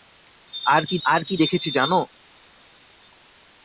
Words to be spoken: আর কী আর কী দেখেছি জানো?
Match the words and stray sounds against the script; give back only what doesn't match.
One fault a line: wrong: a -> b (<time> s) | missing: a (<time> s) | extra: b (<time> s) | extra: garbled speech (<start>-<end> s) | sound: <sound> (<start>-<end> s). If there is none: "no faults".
no faults